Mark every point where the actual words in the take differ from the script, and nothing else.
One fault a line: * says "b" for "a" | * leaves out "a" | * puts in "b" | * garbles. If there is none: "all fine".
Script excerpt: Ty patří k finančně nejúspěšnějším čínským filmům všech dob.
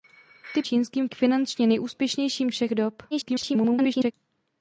* says "čínským" for "patří"
* leaves out "čínským filmům"
* garbles